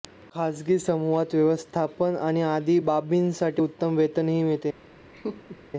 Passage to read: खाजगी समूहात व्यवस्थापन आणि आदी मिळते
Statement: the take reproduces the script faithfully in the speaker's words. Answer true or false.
false